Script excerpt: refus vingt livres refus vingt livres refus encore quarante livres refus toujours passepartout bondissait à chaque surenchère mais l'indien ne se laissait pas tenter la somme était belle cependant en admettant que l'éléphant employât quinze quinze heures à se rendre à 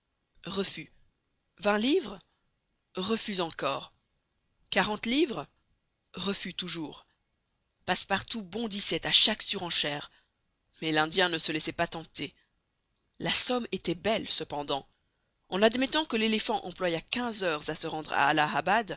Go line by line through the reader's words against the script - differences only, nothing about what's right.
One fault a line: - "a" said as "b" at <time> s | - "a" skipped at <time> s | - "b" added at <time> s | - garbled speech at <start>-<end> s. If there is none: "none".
- "vingt livres refus" skipped at 3.4 s
- "quinze" skipped at 17.4 s